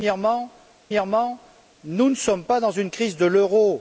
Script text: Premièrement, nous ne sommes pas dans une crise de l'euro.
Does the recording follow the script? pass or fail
fail